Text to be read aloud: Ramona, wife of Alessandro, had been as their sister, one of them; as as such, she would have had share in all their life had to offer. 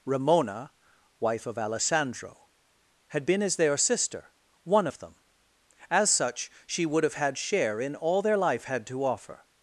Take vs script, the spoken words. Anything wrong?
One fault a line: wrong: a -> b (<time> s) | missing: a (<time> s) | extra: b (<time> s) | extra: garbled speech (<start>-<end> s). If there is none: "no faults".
missing: as (6.1 s)